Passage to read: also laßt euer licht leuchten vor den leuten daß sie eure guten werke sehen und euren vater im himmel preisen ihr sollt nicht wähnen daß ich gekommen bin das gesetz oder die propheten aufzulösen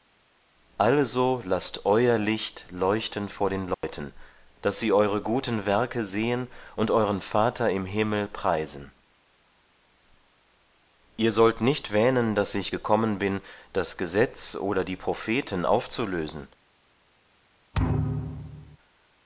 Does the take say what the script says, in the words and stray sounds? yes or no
no